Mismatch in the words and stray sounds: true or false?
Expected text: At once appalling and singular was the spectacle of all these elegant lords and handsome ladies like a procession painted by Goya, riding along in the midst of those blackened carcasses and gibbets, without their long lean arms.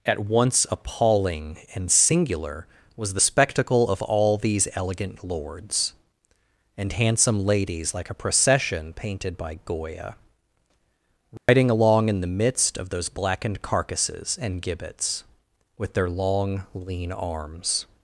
true